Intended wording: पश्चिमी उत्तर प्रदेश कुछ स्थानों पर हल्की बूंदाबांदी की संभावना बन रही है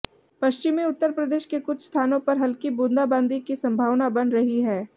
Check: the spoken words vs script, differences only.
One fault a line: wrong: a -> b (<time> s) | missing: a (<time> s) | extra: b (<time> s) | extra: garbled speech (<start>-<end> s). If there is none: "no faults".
extra: के (1.4 s)